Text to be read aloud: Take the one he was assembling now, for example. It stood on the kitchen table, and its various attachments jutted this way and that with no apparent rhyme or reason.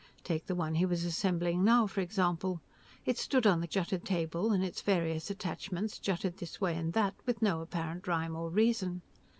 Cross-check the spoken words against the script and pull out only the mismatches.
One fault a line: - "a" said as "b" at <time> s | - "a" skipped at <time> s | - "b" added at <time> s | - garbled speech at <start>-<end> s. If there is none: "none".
- "kitchen" said as "jutted" at 3.7 s